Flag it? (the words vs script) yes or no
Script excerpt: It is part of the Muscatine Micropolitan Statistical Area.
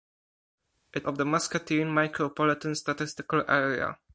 yes